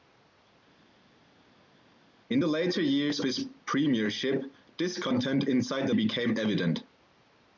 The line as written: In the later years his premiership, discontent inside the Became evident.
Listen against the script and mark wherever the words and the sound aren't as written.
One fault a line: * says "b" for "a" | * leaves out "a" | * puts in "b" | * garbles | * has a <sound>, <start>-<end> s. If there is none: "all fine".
all fine